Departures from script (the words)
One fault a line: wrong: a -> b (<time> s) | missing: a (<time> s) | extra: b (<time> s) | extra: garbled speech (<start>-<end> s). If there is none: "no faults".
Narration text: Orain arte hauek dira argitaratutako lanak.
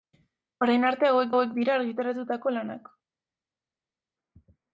extra: hauek (1.3 s)